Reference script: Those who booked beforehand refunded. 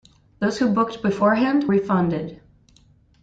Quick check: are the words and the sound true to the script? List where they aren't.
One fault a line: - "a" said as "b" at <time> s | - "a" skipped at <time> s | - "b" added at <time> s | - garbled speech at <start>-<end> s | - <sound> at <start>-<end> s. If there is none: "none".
none